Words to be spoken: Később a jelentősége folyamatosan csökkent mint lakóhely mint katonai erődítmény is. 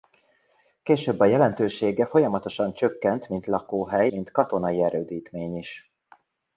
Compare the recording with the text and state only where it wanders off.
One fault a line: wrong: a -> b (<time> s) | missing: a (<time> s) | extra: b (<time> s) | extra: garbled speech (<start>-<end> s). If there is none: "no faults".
no faults